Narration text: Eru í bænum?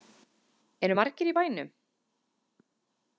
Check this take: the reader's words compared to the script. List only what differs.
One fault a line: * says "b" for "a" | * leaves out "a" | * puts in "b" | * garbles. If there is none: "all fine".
* puts in "margir"